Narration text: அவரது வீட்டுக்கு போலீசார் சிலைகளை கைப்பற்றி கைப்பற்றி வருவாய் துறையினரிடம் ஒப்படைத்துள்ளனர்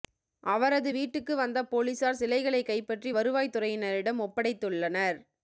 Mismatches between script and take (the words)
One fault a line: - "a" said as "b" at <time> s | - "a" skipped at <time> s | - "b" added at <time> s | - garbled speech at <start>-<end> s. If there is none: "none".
- "வந்த" added at 1.4 s
- "கைப்பற்றி" skipped at 3.1 s